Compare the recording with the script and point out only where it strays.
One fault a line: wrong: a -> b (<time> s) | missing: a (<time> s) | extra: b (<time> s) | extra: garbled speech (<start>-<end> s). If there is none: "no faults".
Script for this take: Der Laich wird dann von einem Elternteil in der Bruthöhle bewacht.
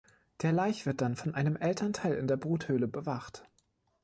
no faults